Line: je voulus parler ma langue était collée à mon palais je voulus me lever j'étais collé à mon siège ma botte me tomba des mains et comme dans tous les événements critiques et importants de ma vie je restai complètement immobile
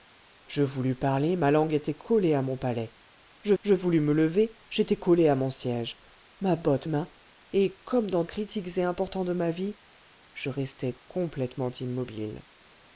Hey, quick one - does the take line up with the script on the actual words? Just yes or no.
no